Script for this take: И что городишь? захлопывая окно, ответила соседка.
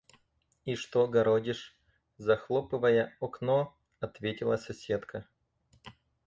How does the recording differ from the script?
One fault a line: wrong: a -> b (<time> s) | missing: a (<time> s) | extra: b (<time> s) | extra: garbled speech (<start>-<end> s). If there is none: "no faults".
no faults